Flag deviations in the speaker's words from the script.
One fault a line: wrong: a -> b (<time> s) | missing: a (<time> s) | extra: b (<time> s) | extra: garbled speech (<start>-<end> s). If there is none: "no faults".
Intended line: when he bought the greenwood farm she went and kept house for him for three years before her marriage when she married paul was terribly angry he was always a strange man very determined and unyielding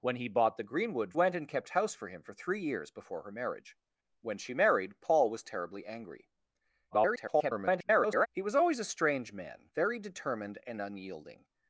missing: farm she (1.1 s)
extra: garbled speech (6.9-8.3 s)